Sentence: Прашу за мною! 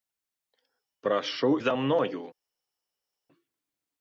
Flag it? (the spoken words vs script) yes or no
no